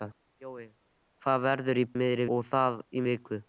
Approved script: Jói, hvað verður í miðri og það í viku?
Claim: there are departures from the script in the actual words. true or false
false